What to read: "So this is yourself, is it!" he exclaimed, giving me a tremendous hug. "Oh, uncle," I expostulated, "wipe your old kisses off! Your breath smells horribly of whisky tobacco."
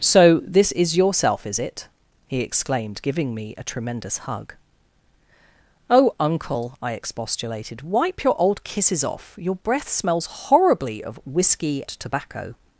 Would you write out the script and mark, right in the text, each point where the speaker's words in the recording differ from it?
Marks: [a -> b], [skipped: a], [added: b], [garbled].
"So this is yourself, is it!" he exclaimed, giving me a tremendous hug. "Oh, uncle," I expostulated, "wipe your old kisses off! Your breath smells horribly of whisky tobacco."